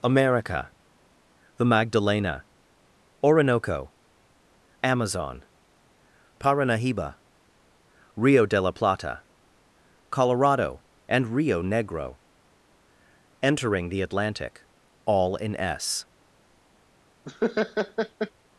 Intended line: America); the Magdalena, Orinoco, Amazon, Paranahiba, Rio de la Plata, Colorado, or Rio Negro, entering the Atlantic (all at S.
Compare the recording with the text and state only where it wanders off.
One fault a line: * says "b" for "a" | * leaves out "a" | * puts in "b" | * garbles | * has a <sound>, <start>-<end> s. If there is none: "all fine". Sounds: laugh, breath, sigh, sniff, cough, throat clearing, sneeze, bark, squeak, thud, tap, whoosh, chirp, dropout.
* says "and" for "or"
* says "in" for "at"
* has a laugh, 17.3-18.3 s